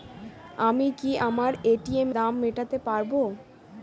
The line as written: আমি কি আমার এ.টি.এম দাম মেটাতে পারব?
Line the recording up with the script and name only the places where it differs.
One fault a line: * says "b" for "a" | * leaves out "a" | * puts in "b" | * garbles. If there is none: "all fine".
all fine